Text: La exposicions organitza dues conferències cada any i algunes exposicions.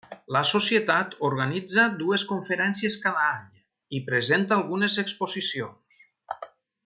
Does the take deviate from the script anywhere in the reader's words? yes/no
yes